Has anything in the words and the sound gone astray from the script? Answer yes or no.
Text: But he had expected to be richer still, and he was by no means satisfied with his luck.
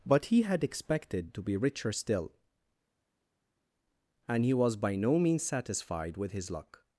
no